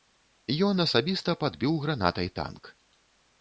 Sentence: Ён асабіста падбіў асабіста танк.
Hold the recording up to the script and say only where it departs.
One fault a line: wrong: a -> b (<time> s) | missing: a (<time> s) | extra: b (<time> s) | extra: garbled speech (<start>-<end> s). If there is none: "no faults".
wrong: асабіста -> гранатай (1.9 s)